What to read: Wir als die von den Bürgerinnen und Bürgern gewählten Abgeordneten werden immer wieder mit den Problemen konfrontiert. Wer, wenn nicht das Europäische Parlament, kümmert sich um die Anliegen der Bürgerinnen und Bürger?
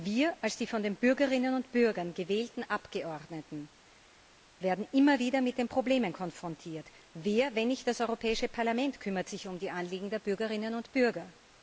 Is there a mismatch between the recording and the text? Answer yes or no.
no